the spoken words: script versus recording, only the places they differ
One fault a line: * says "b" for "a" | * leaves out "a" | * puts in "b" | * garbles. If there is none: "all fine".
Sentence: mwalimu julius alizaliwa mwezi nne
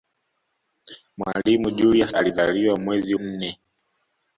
all fine